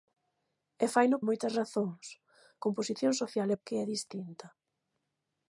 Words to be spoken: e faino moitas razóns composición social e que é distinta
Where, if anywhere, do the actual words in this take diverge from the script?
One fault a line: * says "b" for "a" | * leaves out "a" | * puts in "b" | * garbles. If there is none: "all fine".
all fine